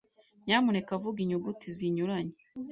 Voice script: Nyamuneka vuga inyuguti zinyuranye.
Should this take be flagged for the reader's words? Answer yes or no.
no